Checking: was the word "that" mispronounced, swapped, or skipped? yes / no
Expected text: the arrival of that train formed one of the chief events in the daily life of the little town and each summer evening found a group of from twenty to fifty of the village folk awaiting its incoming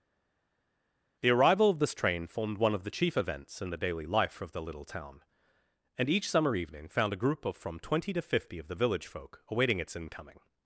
yes